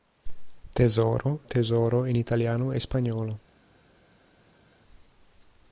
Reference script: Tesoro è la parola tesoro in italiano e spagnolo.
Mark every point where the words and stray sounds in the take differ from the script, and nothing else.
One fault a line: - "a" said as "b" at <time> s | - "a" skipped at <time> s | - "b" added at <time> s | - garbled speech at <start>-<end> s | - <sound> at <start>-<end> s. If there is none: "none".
- "è la parola" skipped at 1.4 s